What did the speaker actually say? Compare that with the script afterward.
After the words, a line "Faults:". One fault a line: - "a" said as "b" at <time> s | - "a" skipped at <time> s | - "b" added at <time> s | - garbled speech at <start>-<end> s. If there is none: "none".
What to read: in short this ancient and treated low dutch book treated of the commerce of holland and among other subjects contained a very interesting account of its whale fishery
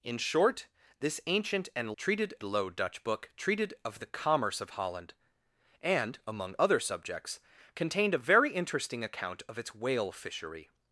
in short this ancient and treated low dutch book treated of the commerce of holland and among other subjects contained a very interesting account of its whale fishery
Faults:
none